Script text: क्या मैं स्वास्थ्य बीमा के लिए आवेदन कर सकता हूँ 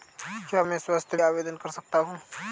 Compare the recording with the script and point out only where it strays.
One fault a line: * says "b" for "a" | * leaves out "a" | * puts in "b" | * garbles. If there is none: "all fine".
* leaves out "बीमा के लिए"